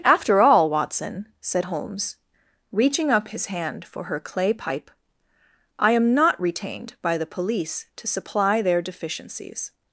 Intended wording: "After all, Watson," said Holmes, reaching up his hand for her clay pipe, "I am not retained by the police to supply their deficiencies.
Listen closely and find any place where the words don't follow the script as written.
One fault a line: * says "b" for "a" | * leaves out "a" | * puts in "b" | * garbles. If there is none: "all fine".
all fine